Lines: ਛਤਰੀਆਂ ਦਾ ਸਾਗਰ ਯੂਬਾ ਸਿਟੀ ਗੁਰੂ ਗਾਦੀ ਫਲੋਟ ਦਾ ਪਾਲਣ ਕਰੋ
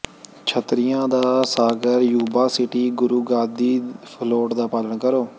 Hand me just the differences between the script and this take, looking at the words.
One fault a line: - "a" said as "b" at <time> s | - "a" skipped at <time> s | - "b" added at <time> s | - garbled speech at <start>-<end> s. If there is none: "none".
none